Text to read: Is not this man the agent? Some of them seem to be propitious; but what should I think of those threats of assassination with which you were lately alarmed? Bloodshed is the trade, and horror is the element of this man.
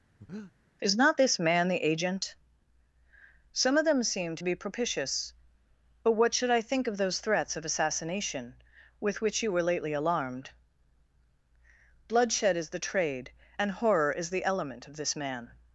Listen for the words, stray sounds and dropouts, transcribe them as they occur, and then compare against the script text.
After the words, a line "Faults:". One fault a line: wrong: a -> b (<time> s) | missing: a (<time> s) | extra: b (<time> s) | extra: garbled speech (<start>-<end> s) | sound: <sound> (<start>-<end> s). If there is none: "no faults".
Is not this man the agent? Some of them seem to be propitious; but what should I think of those threats of assassination with which you were lately alarmed? Bloodshed is the trade, and horror is the element of this man.
Faults:
sound: breath (0.2-0.5 s)